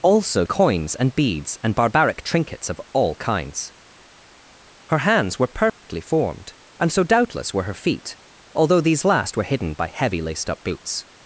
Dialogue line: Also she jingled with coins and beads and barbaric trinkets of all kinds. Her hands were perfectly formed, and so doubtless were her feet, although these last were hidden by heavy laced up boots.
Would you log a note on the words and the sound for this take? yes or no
yes